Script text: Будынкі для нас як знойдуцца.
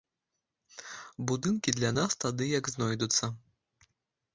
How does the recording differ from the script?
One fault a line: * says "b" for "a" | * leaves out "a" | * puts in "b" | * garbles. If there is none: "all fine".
* puts in "тады"